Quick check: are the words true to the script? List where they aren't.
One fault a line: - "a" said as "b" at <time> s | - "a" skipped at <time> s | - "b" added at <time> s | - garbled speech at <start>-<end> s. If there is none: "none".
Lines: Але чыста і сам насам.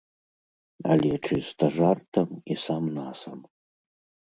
- "жартам" added at 1.8 s